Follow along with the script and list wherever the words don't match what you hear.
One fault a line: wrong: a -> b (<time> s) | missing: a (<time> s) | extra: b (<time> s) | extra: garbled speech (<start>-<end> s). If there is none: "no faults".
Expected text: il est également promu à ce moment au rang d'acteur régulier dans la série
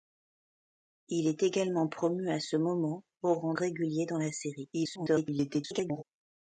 missing: d'acteur (3.5 s)
extra: garbled speech (4.7-6.0 s)